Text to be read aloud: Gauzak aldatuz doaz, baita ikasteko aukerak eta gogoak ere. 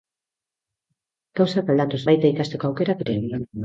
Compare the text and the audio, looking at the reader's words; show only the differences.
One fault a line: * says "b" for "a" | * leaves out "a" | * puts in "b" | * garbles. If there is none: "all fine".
* leaves out "doaz"
* leaves out "eta gogoak"